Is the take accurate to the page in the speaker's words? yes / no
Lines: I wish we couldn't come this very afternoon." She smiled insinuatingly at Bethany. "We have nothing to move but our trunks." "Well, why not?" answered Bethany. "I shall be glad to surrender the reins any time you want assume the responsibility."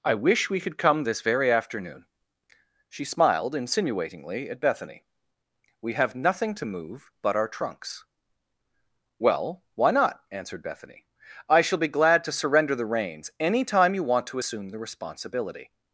no